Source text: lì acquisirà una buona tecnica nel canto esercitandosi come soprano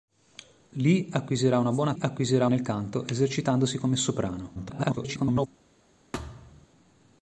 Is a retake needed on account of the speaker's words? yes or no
yes